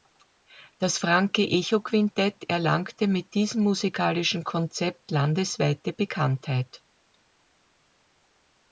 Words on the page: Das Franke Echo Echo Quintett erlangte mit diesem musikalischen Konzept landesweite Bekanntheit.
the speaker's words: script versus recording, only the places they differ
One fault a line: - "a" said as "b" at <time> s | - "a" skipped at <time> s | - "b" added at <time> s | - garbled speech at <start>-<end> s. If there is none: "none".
- "Echo" skipped at 1.8 s